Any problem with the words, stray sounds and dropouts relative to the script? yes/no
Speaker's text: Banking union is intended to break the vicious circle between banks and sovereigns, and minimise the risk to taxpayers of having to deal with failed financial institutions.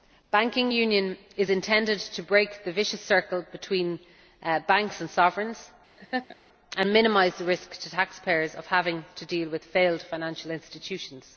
yes